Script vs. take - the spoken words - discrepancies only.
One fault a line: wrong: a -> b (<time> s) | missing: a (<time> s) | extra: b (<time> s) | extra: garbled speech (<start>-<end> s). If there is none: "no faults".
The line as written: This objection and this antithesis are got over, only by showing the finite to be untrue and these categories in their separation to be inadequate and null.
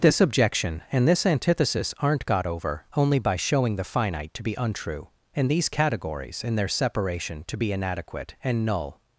wrong: are -> aren't (2.0 s)